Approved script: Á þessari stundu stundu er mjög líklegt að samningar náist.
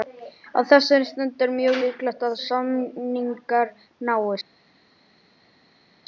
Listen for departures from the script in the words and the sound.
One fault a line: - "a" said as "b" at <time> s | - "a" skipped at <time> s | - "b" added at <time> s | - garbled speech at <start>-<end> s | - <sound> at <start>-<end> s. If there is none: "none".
- "stundu" skipped at 1.4 s